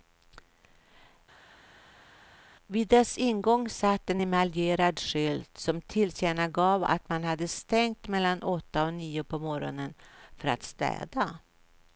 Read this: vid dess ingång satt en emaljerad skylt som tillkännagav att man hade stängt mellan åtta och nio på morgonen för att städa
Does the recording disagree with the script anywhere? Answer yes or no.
no